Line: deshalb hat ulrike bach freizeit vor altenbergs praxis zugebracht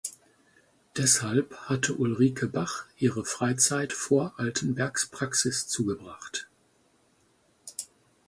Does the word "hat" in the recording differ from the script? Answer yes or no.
yes